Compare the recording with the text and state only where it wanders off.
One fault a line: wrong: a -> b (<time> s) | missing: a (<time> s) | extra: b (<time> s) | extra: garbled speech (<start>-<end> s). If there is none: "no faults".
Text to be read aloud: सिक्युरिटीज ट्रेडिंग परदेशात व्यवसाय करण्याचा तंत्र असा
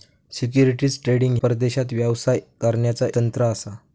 no faults